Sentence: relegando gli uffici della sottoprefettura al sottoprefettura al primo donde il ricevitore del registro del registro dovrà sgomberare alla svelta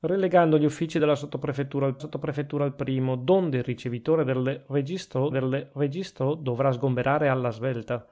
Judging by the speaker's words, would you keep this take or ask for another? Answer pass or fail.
pass